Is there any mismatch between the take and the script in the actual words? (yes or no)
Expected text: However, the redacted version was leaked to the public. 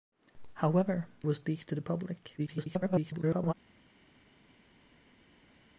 yes